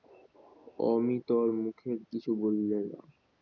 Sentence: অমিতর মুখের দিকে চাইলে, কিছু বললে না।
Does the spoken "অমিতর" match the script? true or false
true